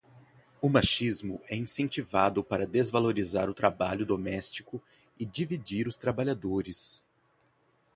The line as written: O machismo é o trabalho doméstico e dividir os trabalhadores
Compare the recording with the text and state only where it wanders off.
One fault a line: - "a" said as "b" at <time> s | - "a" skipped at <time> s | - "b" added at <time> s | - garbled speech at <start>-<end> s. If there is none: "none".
- "incentivado para desvalorizar" added at 1.6 s